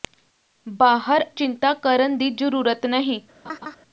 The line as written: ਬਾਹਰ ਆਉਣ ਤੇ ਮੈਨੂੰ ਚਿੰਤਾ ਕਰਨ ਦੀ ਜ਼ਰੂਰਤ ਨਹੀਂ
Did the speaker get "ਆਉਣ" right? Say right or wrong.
wrong